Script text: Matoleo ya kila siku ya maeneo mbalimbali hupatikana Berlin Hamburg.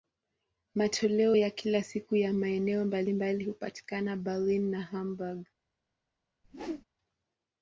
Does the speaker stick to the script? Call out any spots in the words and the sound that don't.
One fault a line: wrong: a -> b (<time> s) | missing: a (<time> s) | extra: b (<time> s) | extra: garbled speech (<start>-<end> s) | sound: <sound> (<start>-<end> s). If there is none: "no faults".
extra: na (4.7 s)
sound: whoosh (6.4-6.9 s)